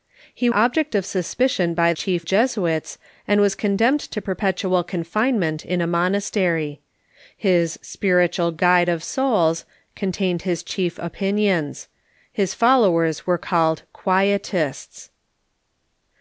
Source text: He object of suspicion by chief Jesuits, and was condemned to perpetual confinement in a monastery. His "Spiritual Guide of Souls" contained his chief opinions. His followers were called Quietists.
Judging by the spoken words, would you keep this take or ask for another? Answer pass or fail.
pass